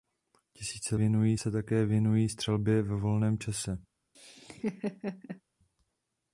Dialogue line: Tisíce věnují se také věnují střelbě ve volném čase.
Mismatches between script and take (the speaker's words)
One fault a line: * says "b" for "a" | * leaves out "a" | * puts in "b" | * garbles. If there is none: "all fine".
all fine